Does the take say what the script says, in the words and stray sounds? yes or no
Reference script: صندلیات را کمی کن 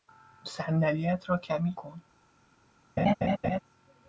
no